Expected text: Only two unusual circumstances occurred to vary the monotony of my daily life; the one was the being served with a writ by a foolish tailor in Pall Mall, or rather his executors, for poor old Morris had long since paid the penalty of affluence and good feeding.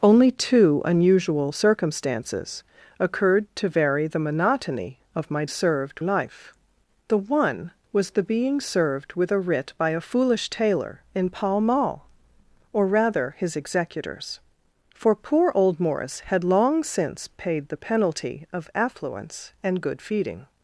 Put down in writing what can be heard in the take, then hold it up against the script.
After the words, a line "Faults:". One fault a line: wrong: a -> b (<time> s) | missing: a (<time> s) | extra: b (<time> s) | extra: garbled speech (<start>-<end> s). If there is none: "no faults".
Only two unusual circumstances occurred to vary the monotony of my served life; the one was the being served with a writ by a foolish tailor in Pall Mall, or rather his executors, for poor old Morris had long since paid the penalty of affluence and good feeding.
Faults:
wrong: daily -> served (5.5 s)